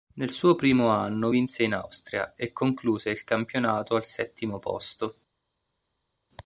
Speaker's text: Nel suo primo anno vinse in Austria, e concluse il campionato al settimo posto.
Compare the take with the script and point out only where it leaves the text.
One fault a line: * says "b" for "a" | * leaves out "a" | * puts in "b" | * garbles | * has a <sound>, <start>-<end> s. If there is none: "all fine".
all fine